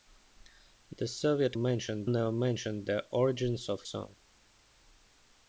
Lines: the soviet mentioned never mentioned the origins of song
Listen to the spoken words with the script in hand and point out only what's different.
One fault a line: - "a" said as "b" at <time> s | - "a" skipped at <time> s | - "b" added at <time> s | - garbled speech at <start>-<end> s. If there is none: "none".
none